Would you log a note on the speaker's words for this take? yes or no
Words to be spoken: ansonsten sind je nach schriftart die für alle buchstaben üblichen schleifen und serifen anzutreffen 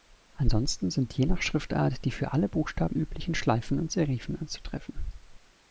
no